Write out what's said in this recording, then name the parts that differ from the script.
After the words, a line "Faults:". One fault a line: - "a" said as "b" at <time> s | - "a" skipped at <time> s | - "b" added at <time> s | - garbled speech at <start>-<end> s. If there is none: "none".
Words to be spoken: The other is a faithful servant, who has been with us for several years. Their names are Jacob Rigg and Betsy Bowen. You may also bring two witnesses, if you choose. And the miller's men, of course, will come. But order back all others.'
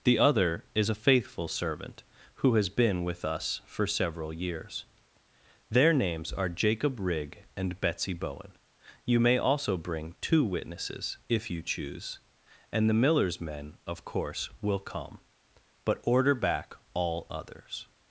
The other is a faithful servant, who has been with us for several years. Their names are Jacob Rigg and Betsy Bowen. You may also bring two witnesses, if you choose. And the miller's men, of course, will come. But order back all others.'
Faults:
none